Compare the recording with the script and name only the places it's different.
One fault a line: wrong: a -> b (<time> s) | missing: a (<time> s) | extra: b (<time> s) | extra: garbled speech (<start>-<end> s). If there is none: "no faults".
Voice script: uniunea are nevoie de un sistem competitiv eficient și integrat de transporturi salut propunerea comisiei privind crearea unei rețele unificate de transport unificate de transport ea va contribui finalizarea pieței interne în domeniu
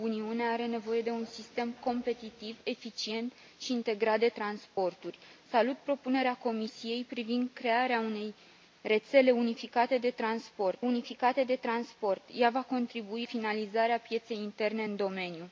no faults